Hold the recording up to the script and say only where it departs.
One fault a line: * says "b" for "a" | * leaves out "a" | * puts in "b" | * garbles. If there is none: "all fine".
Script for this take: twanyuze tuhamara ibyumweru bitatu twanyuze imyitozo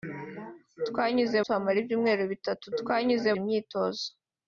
all fine